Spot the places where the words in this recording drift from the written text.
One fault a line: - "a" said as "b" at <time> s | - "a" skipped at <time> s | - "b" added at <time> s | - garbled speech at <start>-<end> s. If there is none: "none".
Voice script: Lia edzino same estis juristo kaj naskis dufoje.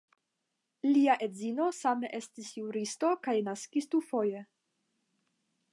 none